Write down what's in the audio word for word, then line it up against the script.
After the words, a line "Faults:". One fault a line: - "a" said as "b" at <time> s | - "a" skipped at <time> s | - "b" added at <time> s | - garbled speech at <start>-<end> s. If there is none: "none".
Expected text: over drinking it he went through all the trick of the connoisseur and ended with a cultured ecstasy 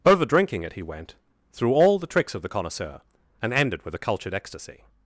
over drinking it he went through all the tricks of the connoisseur and ended with a cultured ecstasy
Faults:
- "trick" said as "tricks" at 2.1 s